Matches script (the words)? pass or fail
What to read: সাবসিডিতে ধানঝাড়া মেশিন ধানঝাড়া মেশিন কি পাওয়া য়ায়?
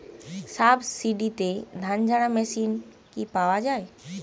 fail